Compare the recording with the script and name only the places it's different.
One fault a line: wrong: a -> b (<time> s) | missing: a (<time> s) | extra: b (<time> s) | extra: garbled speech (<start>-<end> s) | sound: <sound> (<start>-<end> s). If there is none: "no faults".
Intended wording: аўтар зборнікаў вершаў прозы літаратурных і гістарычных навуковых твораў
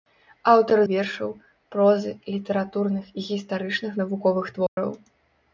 missing: зборнікаў (0.8 s)
sound: dropout (4.7-4.8 s)